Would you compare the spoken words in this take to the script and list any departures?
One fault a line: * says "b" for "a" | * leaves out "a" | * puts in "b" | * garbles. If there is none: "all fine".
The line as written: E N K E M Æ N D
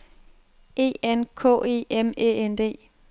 all fine